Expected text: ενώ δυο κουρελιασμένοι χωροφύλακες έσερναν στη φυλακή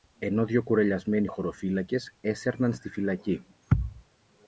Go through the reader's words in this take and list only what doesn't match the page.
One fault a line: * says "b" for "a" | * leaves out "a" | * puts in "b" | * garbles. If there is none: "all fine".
all fine